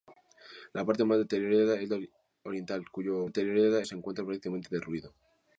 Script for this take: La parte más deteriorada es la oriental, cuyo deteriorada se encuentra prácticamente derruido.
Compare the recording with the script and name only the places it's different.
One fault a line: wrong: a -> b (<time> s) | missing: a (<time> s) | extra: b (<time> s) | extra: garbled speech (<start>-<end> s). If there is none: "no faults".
no faults